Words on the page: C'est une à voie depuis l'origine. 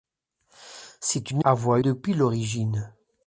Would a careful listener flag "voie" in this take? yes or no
no